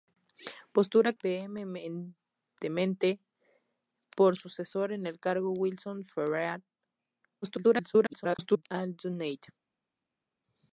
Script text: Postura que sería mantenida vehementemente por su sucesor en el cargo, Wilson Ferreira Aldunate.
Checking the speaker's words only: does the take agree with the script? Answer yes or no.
no